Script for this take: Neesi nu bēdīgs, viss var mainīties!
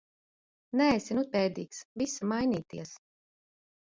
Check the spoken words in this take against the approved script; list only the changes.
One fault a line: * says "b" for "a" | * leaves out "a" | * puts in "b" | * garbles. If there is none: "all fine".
all fine